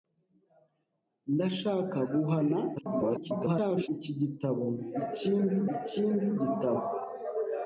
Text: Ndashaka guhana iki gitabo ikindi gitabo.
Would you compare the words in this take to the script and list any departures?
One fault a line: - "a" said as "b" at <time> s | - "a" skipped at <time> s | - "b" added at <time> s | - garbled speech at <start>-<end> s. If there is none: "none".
- garbled speech at 2.8-3.9 s
- "ikindi" added at 5.8 s